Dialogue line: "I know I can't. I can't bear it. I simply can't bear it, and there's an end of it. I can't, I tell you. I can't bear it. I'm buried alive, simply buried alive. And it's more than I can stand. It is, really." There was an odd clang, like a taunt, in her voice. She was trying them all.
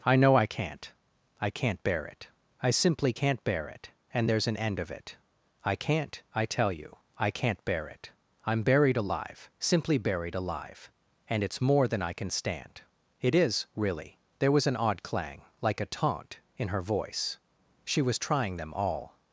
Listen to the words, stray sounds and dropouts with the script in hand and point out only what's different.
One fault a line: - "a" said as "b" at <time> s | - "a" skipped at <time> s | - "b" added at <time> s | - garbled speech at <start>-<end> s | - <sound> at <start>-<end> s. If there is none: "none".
none